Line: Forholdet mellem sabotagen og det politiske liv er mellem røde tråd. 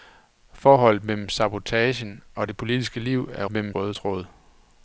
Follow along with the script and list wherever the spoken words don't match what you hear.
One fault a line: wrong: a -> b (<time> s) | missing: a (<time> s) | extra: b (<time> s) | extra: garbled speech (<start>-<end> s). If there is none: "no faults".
no faults